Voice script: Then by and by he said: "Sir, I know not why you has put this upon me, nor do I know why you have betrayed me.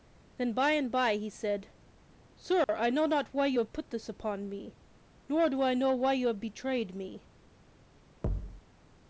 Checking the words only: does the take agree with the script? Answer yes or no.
no